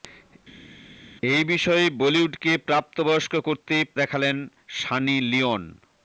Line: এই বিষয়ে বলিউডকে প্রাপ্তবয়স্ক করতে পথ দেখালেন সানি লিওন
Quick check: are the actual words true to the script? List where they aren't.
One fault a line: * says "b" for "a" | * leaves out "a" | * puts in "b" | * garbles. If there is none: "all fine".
* leaves out "পথ"